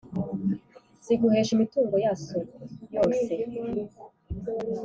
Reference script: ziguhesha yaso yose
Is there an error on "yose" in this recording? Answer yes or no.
no